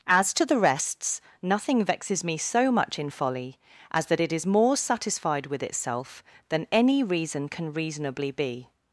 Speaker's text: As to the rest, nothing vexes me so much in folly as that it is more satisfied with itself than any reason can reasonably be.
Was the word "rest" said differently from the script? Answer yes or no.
yes